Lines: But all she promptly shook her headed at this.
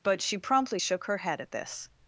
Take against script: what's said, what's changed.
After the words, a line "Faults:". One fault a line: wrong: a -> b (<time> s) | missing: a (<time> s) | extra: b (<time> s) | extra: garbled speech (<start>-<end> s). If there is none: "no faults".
But she promptly shook her head at this.
Faults:
missing: all (0.2 s)
wrong: headed -> head (1.2 s)